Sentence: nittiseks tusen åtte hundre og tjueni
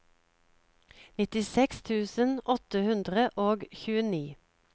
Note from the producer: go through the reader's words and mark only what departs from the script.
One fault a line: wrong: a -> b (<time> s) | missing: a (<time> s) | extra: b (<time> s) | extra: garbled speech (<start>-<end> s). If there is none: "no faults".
no faults